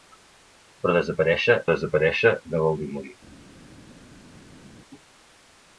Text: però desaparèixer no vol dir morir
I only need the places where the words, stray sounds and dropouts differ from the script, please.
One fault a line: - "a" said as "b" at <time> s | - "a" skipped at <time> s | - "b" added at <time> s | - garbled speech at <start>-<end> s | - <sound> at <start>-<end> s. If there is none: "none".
- "desaparèixer" added at 1.7 s